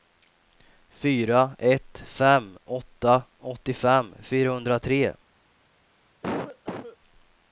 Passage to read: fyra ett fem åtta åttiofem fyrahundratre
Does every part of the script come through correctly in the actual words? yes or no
yes